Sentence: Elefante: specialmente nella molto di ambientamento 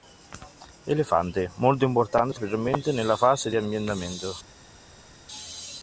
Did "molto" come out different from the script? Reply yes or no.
yes